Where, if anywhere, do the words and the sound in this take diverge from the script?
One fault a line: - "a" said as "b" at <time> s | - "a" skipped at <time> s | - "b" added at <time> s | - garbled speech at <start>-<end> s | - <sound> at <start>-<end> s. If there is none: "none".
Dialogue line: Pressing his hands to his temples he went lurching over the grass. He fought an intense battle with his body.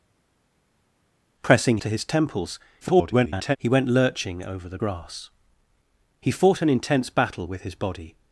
- "his hands" skipped at 1.8 s
- garbled speech at 2.8-3.6 s